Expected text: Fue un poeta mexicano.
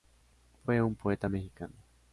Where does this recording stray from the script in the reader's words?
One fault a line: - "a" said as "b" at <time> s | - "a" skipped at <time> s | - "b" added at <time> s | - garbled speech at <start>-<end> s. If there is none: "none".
none